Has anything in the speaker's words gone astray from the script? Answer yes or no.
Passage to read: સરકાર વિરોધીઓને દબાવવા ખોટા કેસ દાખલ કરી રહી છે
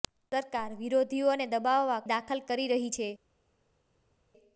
yes